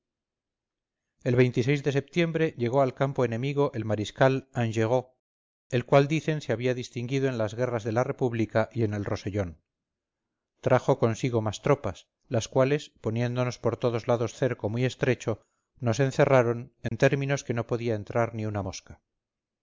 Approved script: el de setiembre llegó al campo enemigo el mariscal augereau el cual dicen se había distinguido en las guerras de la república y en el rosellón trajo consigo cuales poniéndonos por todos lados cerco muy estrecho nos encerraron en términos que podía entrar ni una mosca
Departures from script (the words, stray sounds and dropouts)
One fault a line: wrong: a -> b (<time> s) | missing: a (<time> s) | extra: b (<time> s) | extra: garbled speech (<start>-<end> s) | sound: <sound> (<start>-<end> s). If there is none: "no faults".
extra: más tropas las (11.4 s)
sound: dropout (16.9-16.9 s)
extra: no (17.5 s)